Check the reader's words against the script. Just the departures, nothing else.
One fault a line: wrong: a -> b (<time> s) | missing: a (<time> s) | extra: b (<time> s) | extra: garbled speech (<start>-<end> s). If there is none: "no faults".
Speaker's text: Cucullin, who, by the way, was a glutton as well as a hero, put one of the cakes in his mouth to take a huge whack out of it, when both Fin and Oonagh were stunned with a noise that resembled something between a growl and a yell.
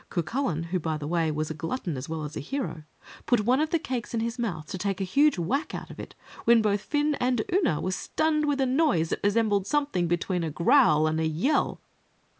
no faults